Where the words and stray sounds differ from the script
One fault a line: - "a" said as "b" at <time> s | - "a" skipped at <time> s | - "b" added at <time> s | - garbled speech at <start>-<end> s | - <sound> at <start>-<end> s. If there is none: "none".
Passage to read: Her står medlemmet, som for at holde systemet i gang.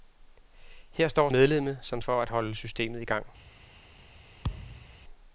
- thud at 4.4-5.0 s